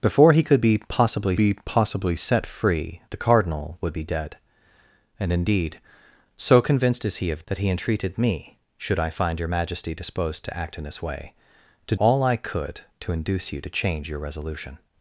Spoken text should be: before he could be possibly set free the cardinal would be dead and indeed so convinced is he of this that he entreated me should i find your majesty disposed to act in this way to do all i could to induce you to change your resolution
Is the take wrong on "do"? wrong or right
wrong